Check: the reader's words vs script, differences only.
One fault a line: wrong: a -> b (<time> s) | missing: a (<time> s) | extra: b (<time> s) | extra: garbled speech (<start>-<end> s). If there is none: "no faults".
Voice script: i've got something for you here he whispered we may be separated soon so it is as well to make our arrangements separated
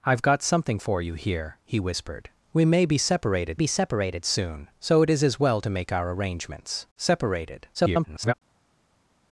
extra: be separated (3.5 s)
extra: garbled speech (7.7-8.3 s)